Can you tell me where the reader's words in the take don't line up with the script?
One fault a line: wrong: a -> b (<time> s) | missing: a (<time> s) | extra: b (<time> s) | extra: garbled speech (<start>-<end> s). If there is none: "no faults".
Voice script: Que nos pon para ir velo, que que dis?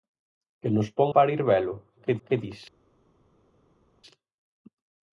no faults